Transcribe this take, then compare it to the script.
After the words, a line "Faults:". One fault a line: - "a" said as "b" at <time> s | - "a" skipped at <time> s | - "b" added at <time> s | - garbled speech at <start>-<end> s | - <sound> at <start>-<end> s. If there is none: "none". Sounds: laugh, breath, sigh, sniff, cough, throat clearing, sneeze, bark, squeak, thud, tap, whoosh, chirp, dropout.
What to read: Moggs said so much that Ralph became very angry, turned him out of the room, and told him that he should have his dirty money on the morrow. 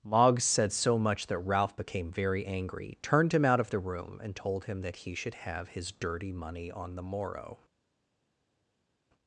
Moggs said so much that Ralph became very angry, turned him out of the room, and told him that he should have his dirty money on the morrow.
Faults:
none